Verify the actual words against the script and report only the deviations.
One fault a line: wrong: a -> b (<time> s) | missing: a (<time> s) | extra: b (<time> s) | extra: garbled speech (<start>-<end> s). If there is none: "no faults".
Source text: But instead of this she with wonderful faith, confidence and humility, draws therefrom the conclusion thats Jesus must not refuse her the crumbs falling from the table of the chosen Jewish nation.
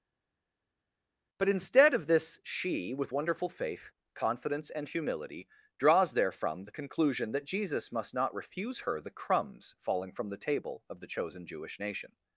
wrong: thats -> that (7.3 s)